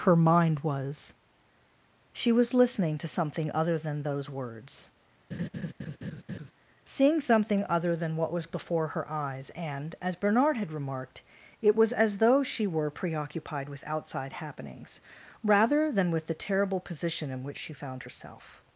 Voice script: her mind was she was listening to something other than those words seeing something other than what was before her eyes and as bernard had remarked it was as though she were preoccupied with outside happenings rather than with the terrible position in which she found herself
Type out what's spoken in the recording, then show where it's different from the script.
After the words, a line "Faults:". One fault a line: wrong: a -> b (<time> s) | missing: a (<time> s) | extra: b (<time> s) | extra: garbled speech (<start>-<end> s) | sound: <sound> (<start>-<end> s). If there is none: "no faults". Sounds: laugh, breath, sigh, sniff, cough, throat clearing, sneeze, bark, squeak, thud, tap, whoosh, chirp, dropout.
her mind was she was listening to something other than those words seeing something other than what was before her eyes and as bernard had remarked it was as though she were preoccupied with outside happenings rather than with the terrible position in which she found herself
Faults:
sound: laugh (5.3-6.5 s)